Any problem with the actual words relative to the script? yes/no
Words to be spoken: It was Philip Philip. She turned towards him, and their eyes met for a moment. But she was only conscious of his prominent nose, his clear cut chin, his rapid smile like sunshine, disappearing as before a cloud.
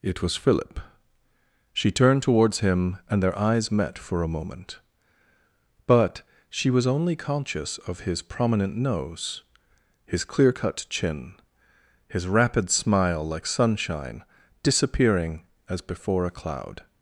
yes